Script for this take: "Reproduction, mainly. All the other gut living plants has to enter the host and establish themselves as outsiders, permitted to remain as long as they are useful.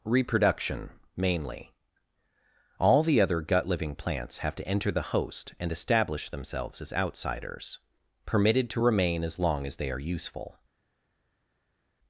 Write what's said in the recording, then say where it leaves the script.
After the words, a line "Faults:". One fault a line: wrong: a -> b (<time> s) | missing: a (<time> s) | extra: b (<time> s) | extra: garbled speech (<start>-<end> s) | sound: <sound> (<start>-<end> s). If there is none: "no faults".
"Reproduction, mainly. All the other gut living plants have to enter the host and establish themselves as outsiders, permitted to remain as long as they are useful.
Faults:
wrong: has -> have (4.4 s)